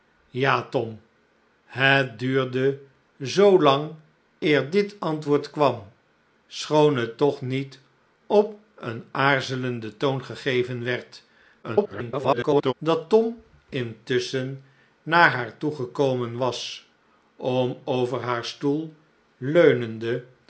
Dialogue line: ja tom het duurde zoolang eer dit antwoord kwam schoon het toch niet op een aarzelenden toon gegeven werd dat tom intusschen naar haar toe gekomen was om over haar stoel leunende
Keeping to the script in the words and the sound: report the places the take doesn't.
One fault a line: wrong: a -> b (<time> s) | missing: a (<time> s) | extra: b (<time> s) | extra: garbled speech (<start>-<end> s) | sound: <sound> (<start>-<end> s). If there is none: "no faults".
extra: garbled speech (11.6-12.7 s)